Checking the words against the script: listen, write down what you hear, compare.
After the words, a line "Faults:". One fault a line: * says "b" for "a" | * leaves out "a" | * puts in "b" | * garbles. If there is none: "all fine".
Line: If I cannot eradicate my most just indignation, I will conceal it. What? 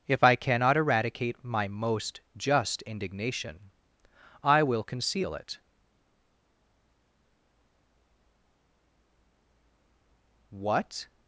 If I cannot eradicate my most just indignation, I will conceal it. What?
Faults:
all fine